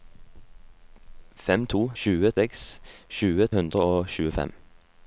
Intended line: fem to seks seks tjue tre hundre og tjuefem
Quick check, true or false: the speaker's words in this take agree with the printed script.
false